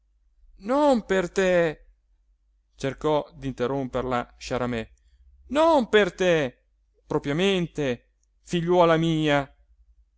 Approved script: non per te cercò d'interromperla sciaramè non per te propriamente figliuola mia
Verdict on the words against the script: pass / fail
pass